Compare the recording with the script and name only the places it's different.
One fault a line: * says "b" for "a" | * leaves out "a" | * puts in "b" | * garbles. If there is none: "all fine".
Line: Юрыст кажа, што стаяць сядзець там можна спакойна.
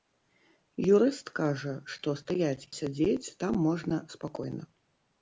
all fine